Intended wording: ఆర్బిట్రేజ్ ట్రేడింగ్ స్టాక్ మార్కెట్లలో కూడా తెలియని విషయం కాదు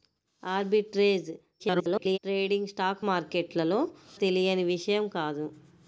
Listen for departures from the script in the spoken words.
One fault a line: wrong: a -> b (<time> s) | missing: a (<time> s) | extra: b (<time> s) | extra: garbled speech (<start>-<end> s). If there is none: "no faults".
extra: garbled speech (1.6-2.2 s)
missing: కూడా (3.8 s)